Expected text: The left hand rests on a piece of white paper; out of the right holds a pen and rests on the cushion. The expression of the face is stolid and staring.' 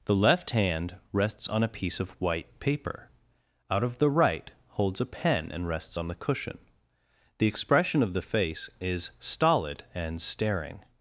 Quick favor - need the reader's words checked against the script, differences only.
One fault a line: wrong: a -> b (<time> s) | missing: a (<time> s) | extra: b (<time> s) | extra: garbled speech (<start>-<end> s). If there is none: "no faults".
no faults